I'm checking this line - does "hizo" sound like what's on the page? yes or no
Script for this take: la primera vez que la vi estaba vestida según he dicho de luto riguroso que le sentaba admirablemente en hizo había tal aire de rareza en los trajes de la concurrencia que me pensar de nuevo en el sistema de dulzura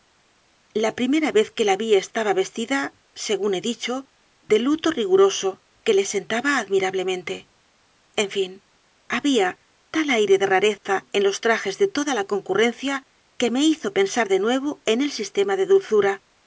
no